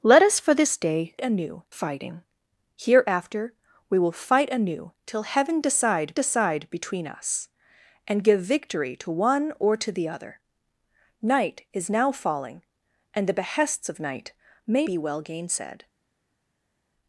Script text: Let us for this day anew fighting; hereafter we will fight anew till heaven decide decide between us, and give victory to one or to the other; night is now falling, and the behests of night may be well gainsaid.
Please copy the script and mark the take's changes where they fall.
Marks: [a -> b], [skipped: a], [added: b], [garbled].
Let us for this day anew fighting; hereafter we will fight anew till heaven decide decide between us, and give victory to one or to the other; night is now falling, and the behests of night may be well gainsaid.